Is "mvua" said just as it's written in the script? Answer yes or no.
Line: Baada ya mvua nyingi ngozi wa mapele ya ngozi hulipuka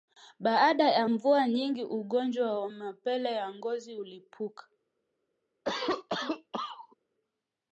yes